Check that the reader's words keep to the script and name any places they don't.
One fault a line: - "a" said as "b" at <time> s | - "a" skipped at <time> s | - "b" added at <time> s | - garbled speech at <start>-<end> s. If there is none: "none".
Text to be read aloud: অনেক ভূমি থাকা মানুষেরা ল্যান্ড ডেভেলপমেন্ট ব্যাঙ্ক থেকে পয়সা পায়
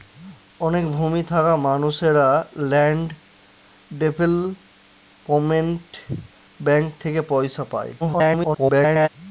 - garbled speech at 8.0-9.1 s